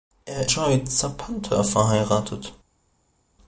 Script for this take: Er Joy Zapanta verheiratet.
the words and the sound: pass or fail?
pass